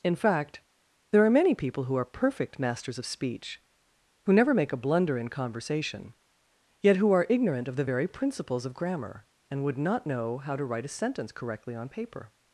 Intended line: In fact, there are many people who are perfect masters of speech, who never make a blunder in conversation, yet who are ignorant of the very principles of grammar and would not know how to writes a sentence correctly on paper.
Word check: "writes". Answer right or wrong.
wrong